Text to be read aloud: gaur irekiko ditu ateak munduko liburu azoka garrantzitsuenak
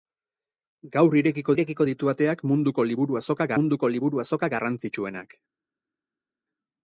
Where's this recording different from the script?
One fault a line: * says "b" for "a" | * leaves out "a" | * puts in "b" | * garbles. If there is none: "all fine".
* puts in "irekiko"
* puts in "munduko liburu azoka"